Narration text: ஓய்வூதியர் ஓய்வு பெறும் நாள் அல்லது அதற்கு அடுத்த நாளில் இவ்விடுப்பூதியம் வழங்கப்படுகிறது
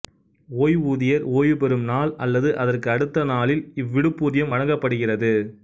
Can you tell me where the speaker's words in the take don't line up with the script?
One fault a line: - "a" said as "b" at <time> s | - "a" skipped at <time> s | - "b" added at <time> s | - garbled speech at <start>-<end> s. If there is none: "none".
none